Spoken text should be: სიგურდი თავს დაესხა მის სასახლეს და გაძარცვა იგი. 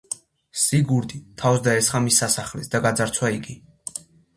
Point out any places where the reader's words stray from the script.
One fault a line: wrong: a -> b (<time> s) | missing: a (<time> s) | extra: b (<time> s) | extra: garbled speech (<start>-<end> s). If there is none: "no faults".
no faults